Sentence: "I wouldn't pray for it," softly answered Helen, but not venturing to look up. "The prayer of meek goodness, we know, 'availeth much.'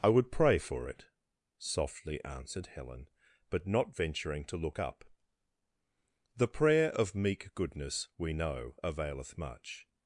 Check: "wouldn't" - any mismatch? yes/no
yes